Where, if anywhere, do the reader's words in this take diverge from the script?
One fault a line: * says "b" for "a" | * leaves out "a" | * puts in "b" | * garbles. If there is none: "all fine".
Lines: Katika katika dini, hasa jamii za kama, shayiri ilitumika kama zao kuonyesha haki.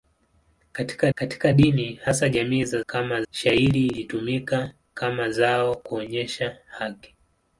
all fine